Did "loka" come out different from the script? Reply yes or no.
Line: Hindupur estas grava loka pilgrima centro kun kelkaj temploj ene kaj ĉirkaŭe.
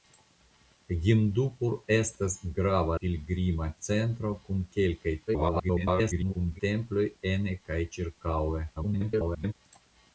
yes